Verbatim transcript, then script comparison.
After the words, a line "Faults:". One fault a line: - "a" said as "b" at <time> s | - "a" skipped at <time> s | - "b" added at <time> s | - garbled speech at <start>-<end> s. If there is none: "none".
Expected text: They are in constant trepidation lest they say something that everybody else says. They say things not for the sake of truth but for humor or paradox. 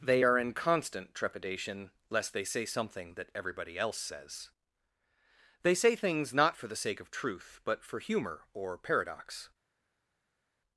They are in constant trepidation lest they say something that everybody else says. They say things not for the sake of truth but for humor or paradox.
Faults:
none